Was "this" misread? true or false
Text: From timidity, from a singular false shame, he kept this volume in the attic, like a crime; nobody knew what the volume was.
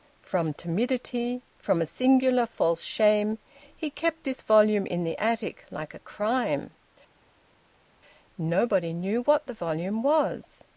false